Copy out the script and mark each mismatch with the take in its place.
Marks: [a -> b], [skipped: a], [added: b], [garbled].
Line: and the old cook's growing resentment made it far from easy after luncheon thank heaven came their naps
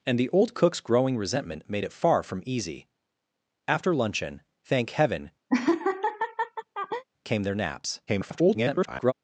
and the old cook's growing resentment made it far from easy after luncheon thank heaven came their naps [garbled]